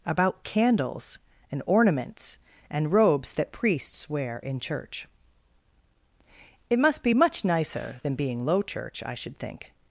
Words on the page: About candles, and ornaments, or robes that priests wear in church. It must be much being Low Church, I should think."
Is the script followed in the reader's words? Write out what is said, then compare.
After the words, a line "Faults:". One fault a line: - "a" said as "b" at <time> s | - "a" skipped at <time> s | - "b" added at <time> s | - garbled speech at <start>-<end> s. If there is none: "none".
About candles, and ornaments, and robes that priests wear in church. It must be much nicer than being Low Church, I should think."
Faults:
- "or" said as "and" at 2.7 s
- "nicer than" added at 7.4 s